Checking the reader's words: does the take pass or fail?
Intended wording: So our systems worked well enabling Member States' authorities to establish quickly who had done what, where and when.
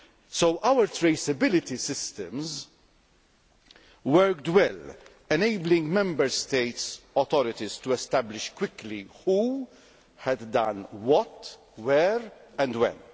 fail